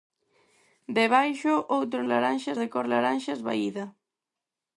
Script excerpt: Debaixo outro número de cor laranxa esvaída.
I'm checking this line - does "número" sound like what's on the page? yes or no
no